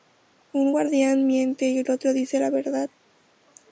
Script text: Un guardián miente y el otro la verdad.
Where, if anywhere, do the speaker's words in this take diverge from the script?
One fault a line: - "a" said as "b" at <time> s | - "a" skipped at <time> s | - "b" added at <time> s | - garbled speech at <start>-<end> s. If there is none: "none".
- "dice" added at 2.1 s